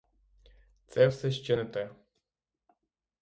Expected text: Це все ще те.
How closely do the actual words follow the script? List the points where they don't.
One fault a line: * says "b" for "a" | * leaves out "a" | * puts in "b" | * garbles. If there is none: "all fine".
* puts in "не"